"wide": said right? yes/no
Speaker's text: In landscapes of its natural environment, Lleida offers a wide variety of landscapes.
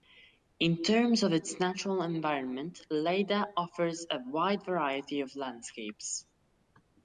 yes